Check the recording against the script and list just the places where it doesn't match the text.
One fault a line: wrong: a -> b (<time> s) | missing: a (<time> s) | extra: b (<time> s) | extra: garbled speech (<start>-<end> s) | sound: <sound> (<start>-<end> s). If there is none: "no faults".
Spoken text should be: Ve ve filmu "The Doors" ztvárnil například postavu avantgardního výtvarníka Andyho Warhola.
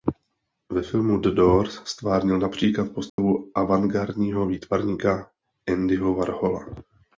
missing: ve (0.8 s)
sound: dropout (3.1-3.2 s)